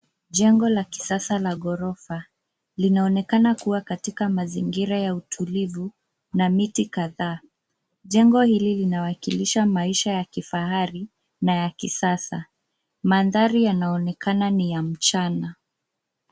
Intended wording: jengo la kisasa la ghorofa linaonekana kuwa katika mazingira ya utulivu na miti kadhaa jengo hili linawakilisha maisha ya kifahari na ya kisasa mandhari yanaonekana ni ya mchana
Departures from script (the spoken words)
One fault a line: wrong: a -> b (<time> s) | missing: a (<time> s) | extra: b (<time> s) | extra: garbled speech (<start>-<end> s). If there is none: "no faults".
no faults